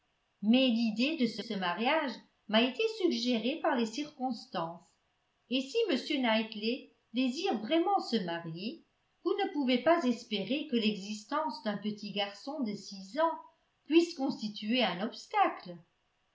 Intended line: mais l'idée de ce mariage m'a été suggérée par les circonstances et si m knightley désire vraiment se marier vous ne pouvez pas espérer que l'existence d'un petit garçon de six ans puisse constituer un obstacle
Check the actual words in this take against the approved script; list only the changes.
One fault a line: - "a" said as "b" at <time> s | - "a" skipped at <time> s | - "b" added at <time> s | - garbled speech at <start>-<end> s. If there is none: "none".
- "ce" added at 1.4 s